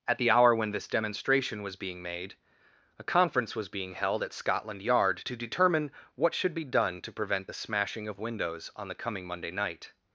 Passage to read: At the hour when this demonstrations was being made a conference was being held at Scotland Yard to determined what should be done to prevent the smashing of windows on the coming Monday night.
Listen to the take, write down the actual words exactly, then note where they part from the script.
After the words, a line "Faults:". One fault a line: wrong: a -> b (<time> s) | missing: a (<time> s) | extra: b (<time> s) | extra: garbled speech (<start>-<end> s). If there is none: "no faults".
At the hour when this demonstration was being made a conference was being held at Scotland Yard to determine what should be done to prevent the smashing of windows on the coming Monday night.
Faults:
wrong: demonstrations -> demonstration (0.9 s)
wrong: determined -> determine (5.4 s)